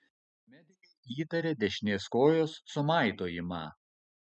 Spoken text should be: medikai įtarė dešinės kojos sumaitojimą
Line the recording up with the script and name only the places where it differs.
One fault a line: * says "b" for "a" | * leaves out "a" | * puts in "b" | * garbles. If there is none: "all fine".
all fine